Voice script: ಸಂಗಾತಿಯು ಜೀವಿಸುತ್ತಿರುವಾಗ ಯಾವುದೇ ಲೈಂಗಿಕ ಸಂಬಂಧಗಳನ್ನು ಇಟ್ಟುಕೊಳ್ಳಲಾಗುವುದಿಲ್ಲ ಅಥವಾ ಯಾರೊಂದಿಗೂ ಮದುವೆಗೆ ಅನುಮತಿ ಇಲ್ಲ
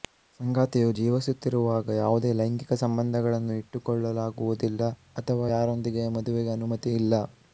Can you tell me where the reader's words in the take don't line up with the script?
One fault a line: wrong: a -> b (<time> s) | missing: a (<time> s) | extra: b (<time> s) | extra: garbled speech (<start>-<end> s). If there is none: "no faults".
no faults